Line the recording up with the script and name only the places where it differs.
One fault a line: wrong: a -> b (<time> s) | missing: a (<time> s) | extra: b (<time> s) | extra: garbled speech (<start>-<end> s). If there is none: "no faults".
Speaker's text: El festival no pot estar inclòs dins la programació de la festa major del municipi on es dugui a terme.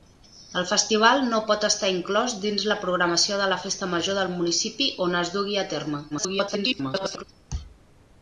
extra: garbled speech (6.1-7.2 s)